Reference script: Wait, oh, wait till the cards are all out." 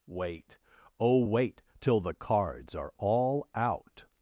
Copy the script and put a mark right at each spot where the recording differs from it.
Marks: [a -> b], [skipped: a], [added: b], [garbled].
Wait, oh, wait till the cards are all out."